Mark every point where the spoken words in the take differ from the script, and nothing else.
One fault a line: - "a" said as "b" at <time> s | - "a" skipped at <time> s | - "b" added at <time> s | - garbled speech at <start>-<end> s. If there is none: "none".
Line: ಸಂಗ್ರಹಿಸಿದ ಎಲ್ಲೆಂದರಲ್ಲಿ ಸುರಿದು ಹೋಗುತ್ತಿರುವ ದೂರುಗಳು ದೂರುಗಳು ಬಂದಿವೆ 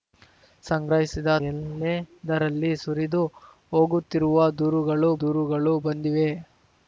none